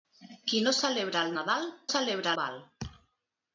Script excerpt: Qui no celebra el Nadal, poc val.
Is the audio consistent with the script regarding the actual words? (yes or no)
no